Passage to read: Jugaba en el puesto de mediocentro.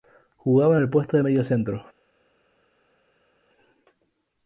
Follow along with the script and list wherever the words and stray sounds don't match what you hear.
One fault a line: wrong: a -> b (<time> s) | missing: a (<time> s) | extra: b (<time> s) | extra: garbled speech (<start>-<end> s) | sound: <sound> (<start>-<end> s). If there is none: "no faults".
no faults